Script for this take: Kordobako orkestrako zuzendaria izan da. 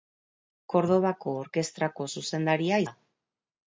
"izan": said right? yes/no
no